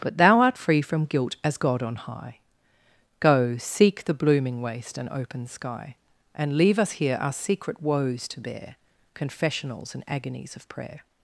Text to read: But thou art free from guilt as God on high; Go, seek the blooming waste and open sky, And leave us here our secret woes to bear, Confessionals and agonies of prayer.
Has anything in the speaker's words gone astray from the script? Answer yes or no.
no